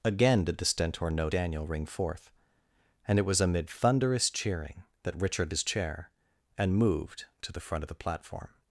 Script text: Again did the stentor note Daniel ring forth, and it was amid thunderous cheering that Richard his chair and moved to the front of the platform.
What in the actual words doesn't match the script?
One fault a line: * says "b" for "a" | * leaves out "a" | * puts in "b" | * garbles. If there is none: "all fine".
all fine